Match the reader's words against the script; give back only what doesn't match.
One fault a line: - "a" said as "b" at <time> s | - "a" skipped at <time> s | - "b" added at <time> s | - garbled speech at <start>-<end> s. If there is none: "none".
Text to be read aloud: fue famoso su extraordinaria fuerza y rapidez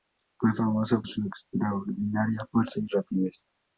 none